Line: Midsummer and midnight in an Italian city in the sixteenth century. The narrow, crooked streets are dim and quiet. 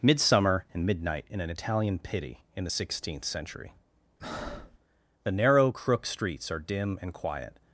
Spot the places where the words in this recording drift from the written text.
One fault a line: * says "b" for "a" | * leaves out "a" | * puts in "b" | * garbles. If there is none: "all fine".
* says "pity" for "city"
* says "crook" for "crooked"